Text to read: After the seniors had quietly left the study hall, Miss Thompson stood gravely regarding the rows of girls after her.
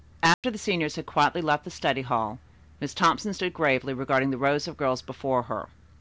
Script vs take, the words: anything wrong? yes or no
yes